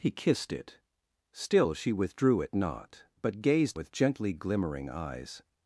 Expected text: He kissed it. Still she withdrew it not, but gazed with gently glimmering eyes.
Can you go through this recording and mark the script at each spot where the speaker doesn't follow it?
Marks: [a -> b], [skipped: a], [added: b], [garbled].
He kissed it. Still she withdrew it not, but gazed with gently glimmering eyes.